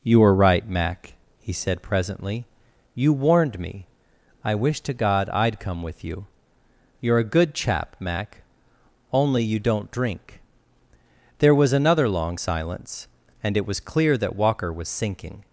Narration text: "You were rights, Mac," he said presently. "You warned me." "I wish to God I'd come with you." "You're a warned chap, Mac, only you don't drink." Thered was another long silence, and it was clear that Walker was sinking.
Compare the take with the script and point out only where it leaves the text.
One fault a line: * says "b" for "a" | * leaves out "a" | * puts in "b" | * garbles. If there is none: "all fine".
* says "right" for "rights"
* says "good" for "warned"
* says "There" for "Thered"